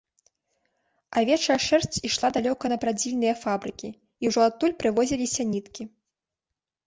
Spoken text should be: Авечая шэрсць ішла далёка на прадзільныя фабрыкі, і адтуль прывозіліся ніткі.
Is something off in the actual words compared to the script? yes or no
yes